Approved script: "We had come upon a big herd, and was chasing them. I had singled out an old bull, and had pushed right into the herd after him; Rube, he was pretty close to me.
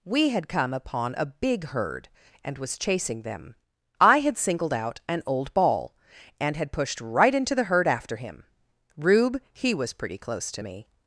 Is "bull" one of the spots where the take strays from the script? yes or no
yes